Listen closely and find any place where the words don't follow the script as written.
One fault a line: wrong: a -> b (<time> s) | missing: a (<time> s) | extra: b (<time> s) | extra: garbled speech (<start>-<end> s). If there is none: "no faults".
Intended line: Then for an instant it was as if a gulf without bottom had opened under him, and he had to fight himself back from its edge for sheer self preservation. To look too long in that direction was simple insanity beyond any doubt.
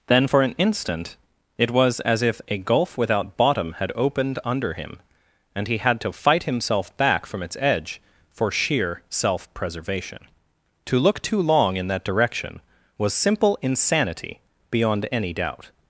no faults